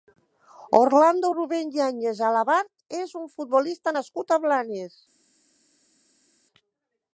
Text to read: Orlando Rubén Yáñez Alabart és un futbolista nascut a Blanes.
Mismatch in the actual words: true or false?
false